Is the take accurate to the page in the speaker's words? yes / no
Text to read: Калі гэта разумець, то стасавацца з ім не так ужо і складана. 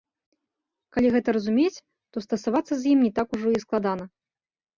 yes